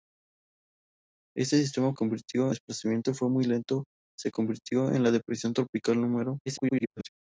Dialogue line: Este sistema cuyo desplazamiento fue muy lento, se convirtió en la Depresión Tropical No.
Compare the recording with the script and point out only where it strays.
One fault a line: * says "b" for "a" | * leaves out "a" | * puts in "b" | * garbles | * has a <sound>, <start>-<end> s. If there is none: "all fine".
* says "convirtió" for "cuyo"
* garbles